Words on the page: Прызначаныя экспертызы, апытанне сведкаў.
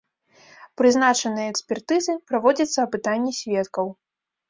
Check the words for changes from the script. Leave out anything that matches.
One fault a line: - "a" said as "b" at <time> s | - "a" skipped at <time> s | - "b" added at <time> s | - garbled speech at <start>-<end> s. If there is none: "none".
- "праводзіцца" added at 2.3 s